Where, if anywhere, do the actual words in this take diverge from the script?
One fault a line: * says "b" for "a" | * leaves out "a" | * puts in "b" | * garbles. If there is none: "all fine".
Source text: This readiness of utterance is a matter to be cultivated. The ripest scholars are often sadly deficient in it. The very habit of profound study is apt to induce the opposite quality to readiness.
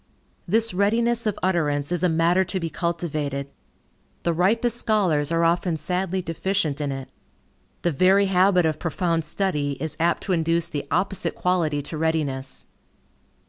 all fine